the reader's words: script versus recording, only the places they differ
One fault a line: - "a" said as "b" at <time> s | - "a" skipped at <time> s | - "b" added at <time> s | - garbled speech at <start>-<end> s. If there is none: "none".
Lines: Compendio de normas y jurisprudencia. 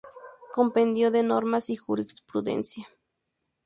none